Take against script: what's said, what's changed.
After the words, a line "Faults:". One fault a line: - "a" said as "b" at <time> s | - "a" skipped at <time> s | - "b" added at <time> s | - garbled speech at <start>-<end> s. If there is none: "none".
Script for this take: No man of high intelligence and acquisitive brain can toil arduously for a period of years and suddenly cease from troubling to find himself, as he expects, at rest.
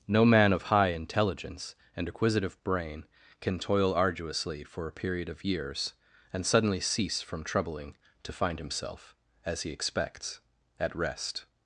No man of high intelligence and acquisitive brain can toil arduously for a period of years and suddenly cease from troubling to find himself, as he expects, at rest.
Faults:
none